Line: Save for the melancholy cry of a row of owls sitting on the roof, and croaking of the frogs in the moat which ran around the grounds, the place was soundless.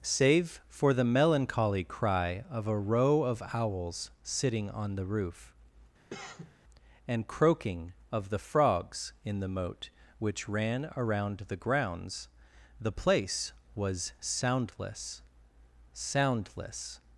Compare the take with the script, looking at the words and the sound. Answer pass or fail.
fail